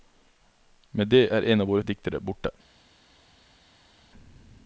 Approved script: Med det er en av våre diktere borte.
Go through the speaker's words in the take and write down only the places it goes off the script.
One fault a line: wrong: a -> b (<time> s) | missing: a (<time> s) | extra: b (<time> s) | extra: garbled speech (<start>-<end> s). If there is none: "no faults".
no faults